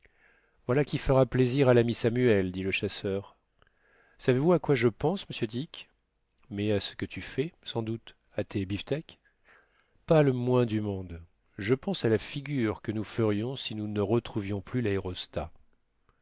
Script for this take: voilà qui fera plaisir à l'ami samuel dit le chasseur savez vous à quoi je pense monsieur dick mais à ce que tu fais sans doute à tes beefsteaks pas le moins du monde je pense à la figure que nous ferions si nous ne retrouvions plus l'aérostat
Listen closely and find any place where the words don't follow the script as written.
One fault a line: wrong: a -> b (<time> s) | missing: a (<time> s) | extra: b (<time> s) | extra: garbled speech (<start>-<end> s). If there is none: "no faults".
no faults